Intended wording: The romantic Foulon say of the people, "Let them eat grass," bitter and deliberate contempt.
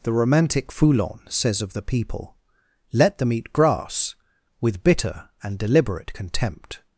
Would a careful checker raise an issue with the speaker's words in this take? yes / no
yes